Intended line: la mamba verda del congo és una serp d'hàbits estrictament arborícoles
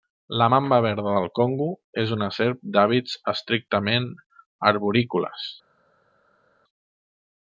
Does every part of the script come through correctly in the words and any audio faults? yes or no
yes